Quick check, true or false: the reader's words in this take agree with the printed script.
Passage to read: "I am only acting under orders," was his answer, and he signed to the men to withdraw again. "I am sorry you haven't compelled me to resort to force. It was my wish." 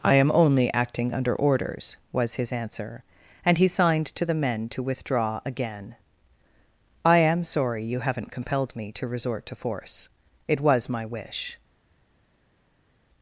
true